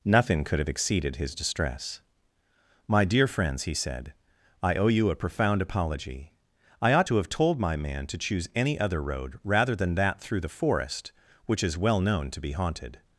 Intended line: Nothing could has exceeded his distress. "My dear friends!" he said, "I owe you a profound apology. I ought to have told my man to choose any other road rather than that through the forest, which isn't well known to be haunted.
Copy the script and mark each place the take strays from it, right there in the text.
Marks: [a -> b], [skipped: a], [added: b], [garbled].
Nothing could [has -> have] exceeded his distress. "My dear friends!" he said, "I owe you a profound apology. I ought to have told my man to choose any other road rather than that through the forest, which [isn't -> is] well known to be haunted.